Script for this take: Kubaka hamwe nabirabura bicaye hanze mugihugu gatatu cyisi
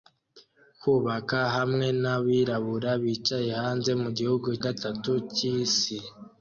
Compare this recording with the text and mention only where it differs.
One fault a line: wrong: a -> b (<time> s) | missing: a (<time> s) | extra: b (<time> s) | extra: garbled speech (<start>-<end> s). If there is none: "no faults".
no faults